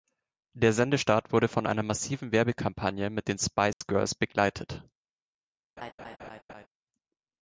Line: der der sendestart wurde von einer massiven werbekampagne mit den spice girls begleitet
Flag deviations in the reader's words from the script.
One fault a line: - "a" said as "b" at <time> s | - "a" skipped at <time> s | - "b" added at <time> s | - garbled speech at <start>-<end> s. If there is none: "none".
- "der" skipped at 0.7 s